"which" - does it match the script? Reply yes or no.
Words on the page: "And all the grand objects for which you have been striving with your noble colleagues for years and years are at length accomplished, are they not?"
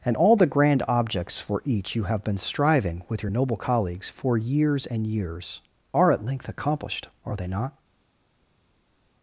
no